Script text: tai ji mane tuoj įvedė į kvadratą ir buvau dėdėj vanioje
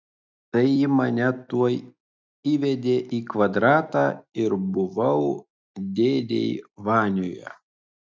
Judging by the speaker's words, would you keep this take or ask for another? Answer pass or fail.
pass